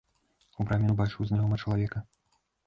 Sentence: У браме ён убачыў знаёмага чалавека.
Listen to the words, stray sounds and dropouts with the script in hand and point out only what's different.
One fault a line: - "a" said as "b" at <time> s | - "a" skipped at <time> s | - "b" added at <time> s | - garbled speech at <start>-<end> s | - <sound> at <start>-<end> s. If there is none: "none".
none